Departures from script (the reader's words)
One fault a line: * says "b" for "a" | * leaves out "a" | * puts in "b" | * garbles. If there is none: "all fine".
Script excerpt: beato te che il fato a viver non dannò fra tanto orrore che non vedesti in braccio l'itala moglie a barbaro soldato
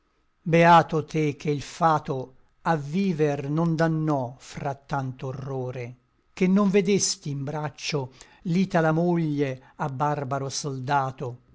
all fine